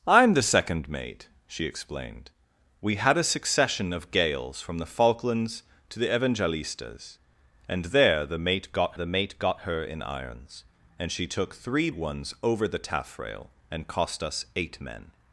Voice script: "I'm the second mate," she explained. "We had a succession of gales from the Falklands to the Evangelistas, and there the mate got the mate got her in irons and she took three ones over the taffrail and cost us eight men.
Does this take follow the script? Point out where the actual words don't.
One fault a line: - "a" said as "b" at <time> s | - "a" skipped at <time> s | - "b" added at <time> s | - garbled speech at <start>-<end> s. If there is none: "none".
none